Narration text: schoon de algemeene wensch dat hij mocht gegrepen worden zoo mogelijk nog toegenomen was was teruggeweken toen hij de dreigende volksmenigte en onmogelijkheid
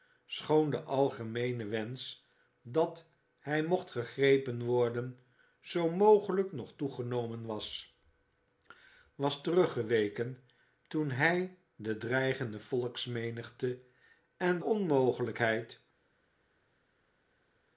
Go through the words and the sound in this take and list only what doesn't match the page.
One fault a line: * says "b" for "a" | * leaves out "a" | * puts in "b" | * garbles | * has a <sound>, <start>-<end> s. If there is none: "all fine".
all fine